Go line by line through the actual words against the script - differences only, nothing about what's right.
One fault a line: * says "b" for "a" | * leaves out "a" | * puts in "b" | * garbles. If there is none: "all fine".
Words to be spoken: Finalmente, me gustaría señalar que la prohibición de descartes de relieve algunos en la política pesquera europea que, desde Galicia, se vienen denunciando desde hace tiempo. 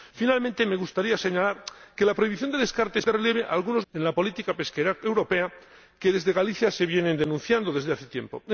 all fine